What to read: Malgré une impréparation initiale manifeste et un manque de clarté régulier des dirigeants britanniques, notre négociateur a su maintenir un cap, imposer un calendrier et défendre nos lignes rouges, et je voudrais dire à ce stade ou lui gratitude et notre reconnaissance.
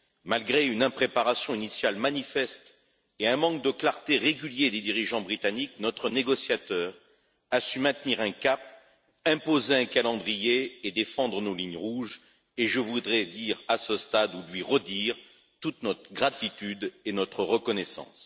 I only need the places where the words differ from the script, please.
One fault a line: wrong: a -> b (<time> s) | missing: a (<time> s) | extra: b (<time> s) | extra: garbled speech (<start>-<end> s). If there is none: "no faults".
extra: redire toute notre (14.6 s)